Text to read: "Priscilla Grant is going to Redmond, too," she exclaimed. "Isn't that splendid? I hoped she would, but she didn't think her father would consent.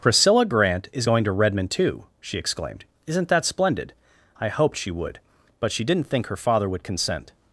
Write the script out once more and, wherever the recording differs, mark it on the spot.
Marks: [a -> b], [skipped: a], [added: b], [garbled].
"Priscilla Grant is going to Redmond, too," she exclaimed. "Isn't that splendid? I hoped she would, but she didn't think her father would consent.